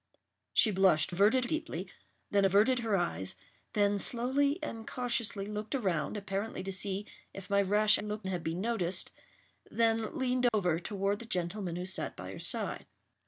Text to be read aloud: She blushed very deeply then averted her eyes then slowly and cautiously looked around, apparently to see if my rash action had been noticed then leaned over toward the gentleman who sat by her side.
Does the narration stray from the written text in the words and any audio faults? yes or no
yes